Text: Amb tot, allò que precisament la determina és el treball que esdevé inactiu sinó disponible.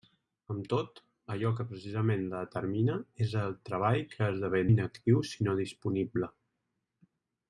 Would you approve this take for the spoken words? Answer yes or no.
yes